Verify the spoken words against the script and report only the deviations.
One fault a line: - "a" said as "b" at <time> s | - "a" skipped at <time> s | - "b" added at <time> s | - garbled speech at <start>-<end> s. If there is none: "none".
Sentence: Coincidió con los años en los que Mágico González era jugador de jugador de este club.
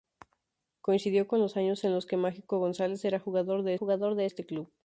none